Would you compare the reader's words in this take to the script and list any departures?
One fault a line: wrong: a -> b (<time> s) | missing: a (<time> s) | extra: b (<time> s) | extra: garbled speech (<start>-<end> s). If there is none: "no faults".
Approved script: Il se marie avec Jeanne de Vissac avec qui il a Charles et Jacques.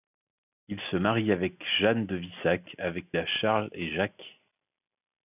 missing: qui il (3.1 s)